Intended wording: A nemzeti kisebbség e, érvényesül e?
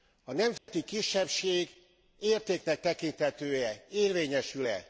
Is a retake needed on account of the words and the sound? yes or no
yes